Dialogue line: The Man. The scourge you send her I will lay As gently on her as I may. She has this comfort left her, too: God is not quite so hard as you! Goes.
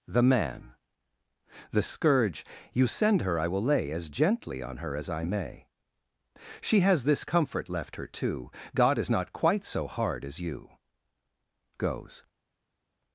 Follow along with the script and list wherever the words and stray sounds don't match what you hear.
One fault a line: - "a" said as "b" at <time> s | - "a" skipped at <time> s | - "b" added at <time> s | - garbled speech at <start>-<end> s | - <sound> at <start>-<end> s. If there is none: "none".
none